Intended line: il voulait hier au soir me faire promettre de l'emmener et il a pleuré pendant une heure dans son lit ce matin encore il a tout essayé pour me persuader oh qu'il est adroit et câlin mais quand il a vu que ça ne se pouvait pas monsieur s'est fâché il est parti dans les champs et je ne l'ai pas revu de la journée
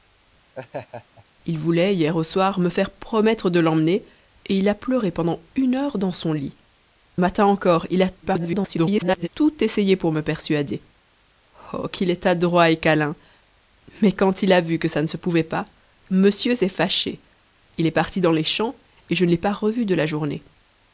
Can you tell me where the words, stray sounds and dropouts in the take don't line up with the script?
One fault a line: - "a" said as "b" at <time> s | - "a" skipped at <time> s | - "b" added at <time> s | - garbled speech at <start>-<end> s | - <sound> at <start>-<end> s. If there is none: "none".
- laugh at 0.5-1.2 s
- "ce" skipped at 6.5 s
- garbled speech at 8.2-9.3 s